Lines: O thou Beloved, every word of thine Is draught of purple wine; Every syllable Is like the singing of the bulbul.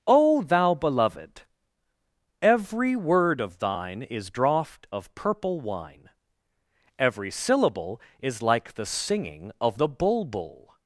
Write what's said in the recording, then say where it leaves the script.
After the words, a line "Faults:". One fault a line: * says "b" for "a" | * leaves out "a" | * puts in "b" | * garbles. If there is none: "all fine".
O thou Beloved, every word of thine Is draught of purple wine; Every syllable Is like the singing of the bulbul.
Faults:
all fine